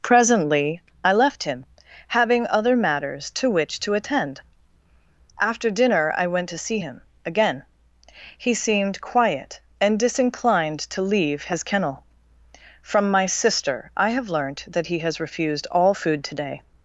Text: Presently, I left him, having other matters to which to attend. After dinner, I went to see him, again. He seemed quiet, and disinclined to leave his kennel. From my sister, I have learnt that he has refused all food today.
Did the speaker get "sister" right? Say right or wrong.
right